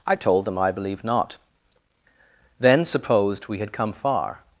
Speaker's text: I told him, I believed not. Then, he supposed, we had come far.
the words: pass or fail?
fail